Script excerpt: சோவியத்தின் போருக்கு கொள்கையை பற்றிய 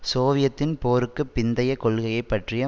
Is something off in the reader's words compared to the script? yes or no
yes